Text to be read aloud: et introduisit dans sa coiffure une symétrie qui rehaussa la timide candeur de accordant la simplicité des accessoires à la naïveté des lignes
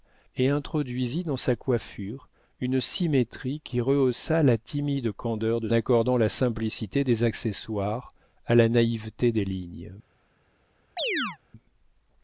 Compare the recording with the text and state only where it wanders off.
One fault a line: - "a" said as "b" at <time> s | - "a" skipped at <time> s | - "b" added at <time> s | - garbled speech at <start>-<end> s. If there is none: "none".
none